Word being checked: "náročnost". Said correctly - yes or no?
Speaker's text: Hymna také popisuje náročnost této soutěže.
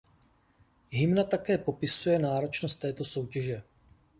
yes